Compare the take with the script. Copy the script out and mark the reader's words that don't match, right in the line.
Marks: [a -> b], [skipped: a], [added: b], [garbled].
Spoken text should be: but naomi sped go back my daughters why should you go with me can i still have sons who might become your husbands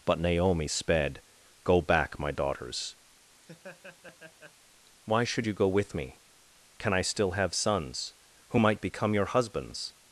but naomi sped go back my daughters why should you go with me can i still have sons who might become your husbands